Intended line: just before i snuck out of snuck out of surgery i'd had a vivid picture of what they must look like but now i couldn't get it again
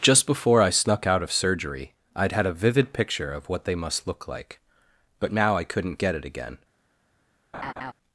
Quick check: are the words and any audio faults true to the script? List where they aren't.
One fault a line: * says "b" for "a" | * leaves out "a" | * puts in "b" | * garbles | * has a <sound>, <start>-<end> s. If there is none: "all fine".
* leaves out "snuck out of"
* has a laugh, 7.5-7.9 s